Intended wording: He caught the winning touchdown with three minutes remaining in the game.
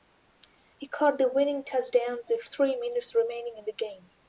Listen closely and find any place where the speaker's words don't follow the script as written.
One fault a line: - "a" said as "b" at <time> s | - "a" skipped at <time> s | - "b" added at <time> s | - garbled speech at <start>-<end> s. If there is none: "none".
none